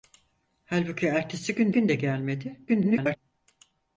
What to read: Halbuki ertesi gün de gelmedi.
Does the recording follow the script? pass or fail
fail